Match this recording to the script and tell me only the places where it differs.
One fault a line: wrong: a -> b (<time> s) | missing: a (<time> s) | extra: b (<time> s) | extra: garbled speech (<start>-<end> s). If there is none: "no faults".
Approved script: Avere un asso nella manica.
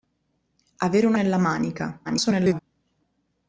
missing: asso (1.1 s)
extra: garbled speech (2.0-2.6 s)